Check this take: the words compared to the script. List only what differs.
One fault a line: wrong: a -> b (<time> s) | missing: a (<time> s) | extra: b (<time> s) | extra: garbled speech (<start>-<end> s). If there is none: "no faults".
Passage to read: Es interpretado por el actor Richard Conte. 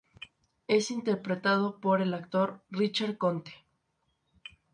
no faults